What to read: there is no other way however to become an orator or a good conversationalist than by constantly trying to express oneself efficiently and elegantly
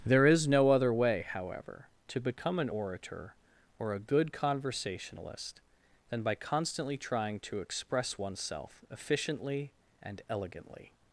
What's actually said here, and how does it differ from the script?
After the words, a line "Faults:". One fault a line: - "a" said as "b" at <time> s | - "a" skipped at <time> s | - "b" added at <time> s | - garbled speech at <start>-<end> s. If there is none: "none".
there is no other way however to become an orator or a good conversationalist than by constantly trying to express oneself efficiently and elegantly
Faults:
none